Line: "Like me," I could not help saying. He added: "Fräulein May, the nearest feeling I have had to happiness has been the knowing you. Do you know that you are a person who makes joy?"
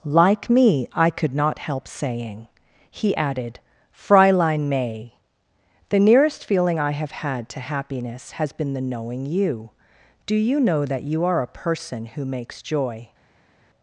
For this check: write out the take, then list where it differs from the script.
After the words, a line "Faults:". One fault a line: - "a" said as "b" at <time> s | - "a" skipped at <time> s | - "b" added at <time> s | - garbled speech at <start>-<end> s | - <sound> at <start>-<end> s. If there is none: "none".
"Like me," I could not help saying. He added: "Fräulein May, the nearest feeling I have had to happiness has been the knowing you. Do you know that you are a person who makes joy?"
Faults:
none